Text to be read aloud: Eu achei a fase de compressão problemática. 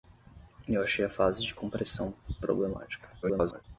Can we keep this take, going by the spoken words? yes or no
no